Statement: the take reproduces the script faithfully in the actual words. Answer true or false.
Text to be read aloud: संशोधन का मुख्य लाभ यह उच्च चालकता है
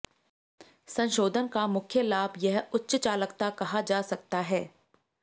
false